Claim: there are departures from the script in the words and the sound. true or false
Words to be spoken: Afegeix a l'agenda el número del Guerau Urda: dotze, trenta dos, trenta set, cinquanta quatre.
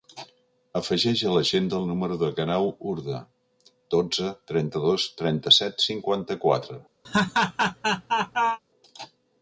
true